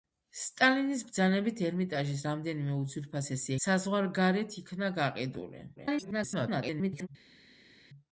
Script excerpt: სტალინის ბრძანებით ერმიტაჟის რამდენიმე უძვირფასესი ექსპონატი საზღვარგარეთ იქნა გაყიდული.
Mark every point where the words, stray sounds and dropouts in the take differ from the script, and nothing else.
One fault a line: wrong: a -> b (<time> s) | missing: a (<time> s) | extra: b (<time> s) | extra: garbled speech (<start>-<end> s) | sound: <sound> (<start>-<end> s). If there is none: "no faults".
missing: ექსპონატი (3.5 s)
extra: garbled speech (5.8-7.1 s)